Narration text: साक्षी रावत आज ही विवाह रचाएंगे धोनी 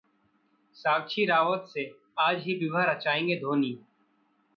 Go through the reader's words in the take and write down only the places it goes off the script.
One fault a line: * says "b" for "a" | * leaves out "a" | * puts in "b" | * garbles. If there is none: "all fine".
* puts in "से"